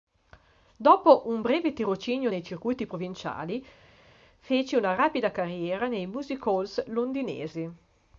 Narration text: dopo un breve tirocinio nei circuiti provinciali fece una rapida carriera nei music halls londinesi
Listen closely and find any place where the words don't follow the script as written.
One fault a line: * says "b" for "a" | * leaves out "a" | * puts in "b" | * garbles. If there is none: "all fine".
all fine